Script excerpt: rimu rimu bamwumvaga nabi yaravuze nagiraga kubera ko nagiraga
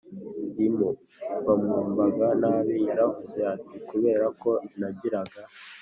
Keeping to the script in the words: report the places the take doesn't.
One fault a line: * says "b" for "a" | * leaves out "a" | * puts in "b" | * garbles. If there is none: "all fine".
* leaves out "rimu"
* says "ati" for "nagiraga"